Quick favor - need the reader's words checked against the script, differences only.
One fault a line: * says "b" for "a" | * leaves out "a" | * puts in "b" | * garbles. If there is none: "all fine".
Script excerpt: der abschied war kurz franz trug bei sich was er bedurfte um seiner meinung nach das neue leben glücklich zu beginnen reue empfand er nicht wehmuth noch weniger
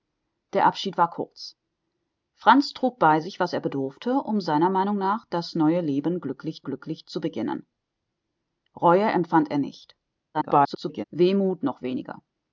* puts in "glücklich"
* garbles